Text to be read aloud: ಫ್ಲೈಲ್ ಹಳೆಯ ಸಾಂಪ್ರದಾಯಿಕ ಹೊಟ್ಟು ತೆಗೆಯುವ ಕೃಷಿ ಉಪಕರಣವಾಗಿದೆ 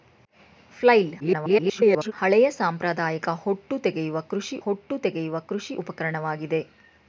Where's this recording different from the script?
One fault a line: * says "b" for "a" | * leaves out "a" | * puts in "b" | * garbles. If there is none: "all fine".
* garbles
* puts in "ಹೊಟ್ಟು ತೆಗೆಯುವ ಕೃಷಿ"